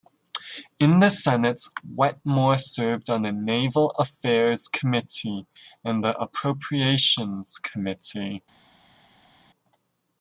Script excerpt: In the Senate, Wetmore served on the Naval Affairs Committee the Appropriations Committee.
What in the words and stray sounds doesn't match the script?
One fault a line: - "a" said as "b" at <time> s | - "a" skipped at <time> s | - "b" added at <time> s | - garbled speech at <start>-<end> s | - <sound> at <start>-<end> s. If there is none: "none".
- "and" added at 5.8 s